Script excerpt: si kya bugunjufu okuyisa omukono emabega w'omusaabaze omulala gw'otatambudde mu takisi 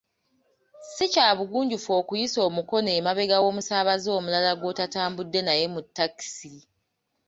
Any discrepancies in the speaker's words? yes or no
yes